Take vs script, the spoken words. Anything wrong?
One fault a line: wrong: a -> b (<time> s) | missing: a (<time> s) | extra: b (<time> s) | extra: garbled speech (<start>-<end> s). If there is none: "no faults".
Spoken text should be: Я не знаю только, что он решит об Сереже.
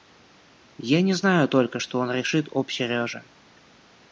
no faults